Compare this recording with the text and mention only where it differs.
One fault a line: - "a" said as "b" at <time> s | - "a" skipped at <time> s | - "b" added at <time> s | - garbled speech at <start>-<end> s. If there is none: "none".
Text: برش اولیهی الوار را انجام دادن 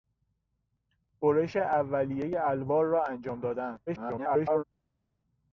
- garbled speech at 3.9-4.6 s